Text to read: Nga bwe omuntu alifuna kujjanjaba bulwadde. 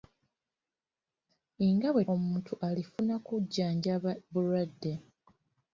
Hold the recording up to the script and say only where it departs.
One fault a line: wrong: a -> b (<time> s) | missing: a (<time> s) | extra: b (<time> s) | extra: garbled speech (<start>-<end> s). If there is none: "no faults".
no faults